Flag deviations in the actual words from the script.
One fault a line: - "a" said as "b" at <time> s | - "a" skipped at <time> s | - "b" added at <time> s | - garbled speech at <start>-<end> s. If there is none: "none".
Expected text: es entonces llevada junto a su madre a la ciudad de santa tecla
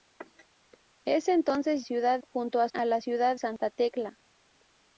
- "llevada" said as "ciudad" at 1.8 s
- "su madre" skipped at 2.7 s
- "de" skipped at 3.4 s